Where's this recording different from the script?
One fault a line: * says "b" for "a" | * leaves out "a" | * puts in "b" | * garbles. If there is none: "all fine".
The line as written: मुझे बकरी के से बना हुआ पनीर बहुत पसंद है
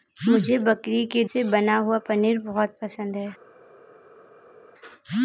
all fine